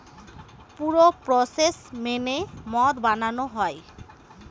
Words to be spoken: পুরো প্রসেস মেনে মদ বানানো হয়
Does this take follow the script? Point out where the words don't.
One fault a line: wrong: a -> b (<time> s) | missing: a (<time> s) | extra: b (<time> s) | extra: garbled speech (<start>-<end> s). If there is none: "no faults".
no faults